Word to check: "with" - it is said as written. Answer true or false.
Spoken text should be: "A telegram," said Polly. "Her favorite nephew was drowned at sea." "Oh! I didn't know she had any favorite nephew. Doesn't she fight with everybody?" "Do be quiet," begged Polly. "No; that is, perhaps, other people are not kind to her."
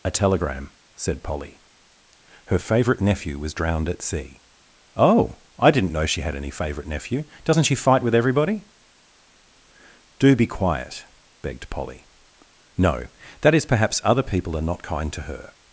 true